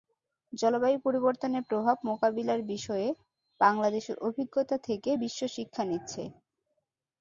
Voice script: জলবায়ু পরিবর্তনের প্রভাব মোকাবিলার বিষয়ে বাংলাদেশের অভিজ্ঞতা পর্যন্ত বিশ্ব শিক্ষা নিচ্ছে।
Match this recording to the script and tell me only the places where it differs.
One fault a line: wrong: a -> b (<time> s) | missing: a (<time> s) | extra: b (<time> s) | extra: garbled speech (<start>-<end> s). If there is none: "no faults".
wrong: পর্যন্ত -> থেকে (4.9 s)